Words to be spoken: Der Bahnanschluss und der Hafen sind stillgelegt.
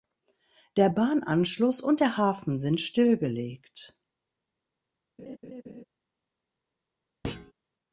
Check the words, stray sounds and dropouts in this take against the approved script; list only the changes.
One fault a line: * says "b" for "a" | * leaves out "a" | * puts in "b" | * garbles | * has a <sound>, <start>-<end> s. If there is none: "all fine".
* has a laugh, 5.2-5.8 s
* has a thud, 7.2-7.5 s